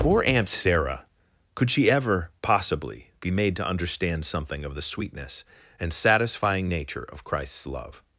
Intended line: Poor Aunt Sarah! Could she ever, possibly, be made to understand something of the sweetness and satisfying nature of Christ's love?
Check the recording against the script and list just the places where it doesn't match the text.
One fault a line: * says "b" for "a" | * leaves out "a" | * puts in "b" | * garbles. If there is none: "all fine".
all fine